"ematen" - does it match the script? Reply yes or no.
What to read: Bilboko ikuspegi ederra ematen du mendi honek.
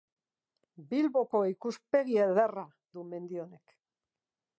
no